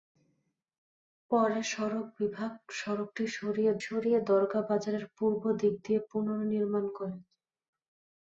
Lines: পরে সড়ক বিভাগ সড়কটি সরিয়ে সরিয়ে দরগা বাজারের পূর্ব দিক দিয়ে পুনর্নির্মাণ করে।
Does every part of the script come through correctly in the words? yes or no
yes